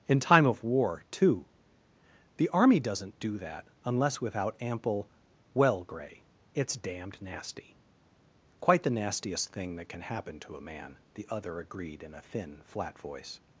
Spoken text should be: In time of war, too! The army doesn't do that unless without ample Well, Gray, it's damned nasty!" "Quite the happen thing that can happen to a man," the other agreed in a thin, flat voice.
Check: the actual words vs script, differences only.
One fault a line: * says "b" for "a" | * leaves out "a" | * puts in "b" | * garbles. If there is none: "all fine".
* says "nastiest" for "happen"